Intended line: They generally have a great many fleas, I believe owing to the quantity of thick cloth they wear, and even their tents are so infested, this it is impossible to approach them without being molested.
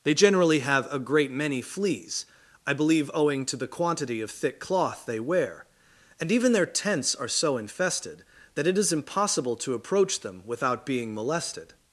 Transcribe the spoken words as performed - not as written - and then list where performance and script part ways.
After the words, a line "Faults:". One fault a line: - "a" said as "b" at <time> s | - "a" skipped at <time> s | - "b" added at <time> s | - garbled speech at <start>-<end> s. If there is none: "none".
They generally have a great many fleas, I believe owing to the quantity of thick cloth they wear, and even their tents are so infested, that it is impossible to approach them without being molested.
Faults:
- "this" said as "that" at 8.5 s